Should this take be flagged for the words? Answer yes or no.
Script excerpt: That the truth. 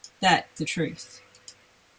no